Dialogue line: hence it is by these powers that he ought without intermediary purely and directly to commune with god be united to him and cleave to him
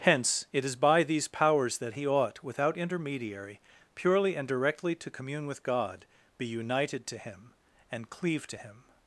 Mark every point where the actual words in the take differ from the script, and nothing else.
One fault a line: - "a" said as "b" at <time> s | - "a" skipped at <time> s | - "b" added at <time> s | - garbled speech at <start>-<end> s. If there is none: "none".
none